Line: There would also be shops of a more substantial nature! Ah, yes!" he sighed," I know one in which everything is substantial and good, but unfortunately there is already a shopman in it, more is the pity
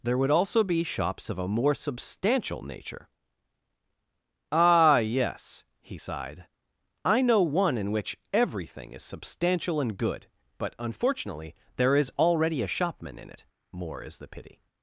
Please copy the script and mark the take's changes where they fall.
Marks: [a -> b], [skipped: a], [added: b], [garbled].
There would also be shops of a more substantial nature! Ah, yes!" he sighed," I know one in which everything is substantial and good, but unfortunately there is already a shopman in it, more is the pity